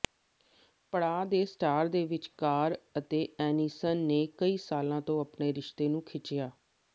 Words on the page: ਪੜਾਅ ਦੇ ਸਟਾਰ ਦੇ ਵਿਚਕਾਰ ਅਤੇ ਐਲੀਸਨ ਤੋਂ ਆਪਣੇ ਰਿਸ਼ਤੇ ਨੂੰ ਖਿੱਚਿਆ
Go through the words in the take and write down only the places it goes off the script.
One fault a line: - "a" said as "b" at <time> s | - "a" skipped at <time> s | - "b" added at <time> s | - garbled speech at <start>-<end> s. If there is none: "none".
- "ਨੇ ਕਈ ਸਾਲਾਂ" added at 4.0 s